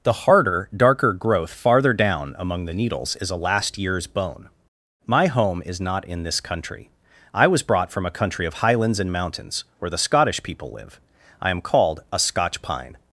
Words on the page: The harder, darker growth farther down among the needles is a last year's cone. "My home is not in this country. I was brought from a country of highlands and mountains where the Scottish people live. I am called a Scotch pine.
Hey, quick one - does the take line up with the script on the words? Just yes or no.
no